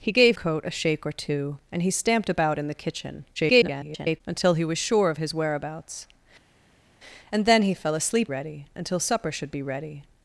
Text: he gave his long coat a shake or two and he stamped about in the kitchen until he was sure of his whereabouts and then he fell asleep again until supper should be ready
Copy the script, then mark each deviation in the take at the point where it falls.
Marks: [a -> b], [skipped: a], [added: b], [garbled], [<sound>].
he gave [skipped: his long] coat a shake or two and he stamped about in the kitchen [garbled] until he was sure of his whereabouts and then he fell asleep [again -> ready] until supper should be ready